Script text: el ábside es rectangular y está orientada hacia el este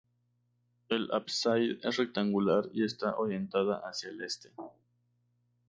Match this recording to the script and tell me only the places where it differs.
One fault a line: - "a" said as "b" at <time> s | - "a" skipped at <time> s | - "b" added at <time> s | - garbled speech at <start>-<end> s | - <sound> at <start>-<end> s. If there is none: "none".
none